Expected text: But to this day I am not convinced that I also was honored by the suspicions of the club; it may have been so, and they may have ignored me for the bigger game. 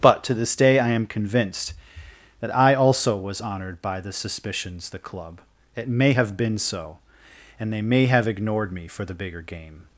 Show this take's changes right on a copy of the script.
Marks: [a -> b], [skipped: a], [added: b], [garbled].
But to this day I am [skipped: not] convinced that I also was honored by the suspicions [skipped: of] the club; it may have been so, and they may have ignored me for the bigger game.